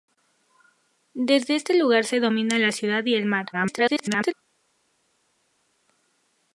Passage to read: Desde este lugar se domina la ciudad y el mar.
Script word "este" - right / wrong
right